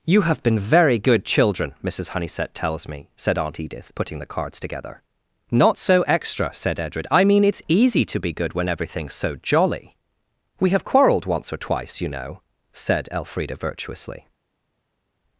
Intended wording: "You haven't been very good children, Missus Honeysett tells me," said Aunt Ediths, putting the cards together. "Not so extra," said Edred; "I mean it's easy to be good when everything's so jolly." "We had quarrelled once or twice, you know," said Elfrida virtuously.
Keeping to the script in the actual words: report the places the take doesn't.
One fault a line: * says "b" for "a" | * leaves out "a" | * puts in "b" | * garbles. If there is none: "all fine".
* says "have" for "haven't"
* says "Edith" for "Ediths"
* says "have" for "had"